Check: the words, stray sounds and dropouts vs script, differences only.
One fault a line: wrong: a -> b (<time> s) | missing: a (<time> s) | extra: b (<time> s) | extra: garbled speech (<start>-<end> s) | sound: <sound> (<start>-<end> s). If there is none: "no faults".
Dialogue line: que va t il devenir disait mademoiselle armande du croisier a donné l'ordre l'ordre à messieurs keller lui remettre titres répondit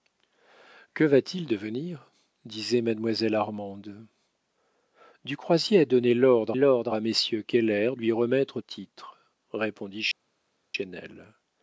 no faults